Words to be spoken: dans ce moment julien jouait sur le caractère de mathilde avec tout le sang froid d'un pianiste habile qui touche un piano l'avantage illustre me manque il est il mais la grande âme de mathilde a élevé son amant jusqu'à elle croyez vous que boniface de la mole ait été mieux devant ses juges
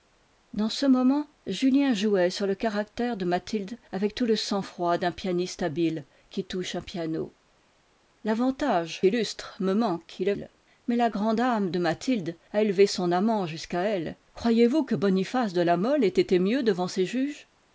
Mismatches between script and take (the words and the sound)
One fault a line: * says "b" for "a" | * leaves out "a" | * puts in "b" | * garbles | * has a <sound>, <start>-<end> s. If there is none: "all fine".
all fine